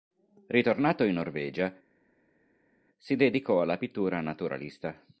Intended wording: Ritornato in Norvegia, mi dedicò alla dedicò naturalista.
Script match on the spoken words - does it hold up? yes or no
no